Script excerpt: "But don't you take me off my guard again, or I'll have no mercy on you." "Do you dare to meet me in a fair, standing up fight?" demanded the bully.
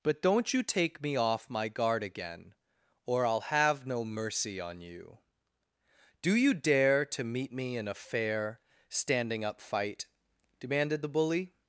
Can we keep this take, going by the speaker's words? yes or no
yes